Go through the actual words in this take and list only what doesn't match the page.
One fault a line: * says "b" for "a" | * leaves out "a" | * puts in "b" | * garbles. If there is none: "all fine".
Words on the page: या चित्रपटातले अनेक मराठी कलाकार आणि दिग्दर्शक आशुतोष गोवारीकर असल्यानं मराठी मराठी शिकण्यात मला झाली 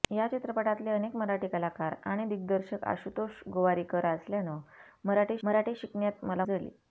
all fine